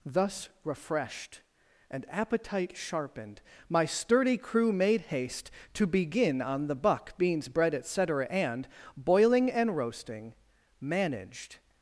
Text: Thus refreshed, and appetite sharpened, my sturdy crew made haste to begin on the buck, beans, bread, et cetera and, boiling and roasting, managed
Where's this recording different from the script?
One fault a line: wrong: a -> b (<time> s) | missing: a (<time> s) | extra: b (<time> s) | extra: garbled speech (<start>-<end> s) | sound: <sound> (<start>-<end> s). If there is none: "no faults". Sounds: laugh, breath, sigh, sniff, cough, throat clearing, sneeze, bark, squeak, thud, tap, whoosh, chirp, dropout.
no faults